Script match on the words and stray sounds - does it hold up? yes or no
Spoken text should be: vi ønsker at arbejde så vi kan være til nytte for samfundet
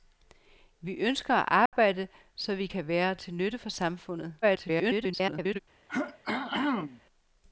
no